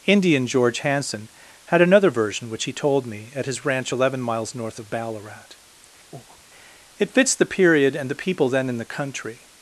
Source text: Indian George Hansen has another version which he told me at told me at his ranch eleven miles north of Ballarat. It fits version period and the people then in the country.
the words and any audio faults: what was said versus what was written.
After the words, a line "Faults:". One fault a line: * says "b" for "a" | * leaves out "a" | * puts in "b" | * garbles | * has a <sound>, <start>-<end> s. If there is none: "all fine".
Indian George Hansen had another version which he told me at his ranch eleven miles north of Ballarat. It fits the period and the people then in the country.
Faults:
* says "had" for "has"
* leaves out "told me at"
* has a breath, 6.1-6.4 s
* says "the" for "version"